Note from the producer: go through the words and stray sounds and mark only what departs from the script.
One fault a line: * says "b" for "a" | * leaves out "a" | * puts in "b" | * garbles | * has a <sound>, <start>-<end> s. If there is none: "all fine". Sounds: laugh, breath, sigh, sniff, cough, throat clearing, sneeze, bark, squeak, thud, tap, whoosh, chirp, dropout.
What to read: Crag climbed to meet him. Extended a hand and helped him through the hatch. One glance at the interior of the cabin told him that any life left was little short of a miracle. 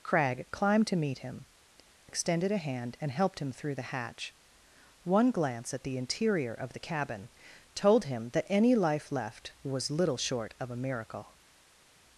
all fine